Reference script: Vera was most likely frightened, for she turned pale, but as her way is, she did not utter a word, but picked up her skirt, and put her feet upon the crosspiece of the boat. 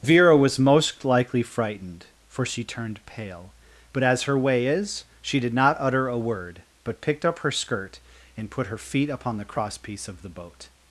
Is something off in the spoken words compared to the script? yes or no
no